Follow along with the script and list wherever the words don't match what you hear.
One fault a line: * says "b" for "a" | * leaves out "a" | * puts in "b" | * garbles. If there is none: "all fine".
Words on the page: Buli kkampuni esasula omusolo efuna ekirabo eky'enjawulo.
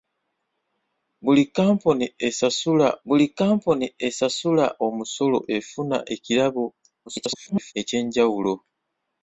* puts in "buli kkampuni esasula"
* garbles